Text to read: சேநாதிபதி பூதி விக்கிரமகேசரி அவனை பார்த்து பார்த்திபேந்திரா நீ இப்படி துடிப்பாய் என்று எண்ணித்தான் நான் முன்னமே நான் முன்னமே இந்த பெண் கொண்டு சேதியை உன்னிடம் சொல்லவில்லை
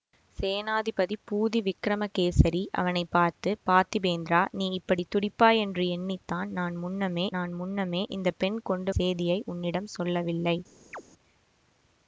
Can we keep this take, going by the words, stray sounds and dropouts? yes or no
no